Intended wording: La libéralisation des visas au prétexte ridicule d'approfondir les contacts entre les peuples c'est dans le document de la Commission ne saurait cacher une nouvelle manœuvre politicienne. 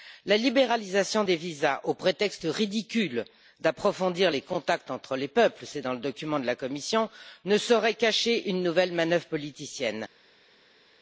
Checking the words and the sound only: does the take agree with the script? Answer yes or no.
yes